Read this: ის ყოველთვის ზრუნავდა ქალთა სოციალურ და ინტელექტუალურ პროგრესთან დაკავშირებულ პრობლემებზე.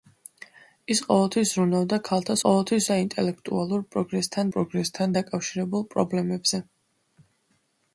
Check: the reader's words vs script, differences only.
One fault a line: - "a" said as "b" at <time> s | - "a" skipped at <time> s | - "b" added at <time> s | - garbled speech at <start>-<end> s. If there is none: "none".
- "სოციალურ" said as "ყოველთვის" at 2.4 s
- "პროგრესთან" added at 4.6 s